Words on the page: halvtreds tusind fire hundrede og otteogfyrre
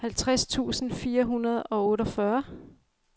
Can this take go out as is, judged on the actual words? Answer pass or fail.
pass